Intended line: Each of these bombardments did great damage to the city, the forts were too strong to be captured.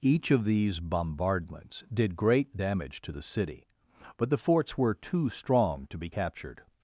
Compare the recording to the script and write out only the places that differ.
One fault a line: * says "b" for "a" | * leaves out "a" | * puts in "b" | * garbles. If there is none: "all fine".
* puts in "but"